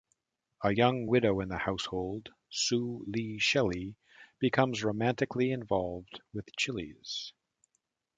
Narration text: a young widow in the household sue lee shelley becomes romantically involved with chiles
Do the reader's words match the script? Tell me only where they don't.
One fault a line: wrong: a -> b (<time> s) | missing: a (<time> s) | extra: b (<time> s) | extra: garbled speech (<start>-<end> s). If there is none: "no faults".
no faults